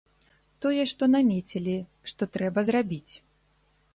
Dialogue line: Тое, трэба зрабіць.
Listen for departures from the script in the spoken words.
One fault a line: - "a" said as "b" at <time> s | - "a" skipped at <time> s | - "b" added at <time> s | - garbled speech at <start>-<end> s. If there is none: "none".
- "што намецілі што" added at 0.9 s